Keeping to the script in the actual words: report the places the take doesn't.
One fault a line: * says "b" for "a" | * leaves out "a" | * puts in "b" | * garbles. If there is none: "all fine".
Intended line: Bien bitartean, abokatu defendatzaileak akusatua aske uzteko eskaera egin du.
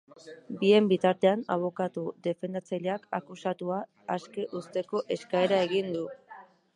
all fine